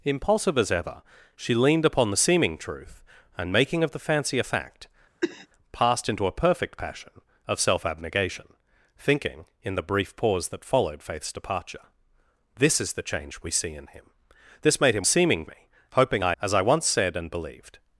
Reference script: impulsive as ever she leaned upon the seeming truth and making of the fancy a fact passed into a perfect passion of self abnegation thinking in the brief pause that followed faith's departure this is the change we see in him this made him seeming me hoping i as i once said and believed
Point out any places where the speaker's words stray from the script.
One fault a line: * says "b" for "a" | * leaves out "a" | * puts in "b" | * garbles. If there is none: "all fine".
all fine